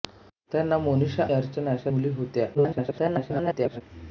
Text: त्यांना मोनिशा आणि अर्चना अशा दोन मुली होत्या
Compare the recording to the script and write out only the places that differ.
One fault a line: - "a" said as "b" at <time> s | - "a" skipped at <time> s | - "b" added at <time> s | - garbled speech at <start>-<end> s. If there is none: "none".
- "आणि" skipped at 1.2 s
- "दोन" skipped at 1.9 s
- garbled speech at 2.5-3.8 s